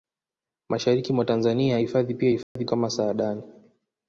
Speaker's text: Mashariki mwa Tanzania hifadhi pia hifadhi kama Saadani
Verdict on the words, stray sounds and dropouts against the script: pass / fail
fail